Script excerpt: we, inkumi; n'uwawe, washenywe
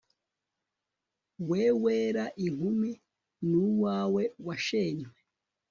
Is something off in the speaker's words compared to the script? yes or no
yes